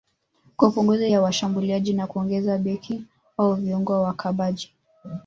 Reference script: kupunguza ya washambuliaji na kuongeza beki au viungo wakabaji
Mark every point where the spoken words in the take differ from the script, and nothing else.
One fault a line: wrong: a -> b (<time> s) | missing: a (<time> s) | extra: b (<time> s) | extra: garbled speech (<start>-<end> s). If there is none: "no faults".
no faults